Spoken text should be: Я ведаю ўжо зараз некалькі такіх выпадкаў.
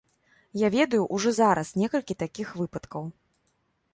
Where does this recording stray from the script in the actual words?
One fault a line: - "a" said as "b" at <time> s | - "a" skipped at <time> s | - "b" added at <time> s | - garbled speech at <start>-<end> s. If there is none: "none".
none